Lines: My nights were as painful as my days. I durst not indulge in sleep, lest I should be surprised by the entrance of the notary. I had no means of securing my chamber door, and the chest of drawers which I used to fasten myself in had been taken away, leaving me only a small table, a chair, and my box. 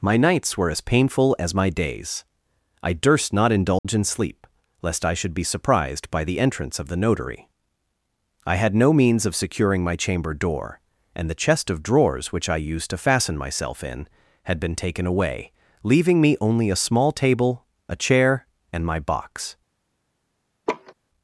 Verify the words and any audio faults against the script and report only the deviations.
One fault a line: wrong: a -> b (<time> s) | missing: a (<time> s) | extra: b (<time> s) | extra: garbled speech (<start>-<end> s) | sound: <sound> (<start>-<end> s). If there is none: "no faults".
sound: dropout (3.8-3.8 s)
sound: laugh (20.7-20.9 s)